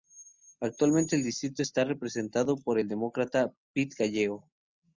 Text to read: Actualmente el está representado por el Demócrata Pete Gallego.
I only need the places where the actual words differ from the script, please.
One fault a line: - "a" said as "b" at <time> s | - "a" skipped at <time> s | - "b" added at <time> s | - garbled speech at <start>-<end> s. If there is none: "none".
- "distrito" added at 1.2 s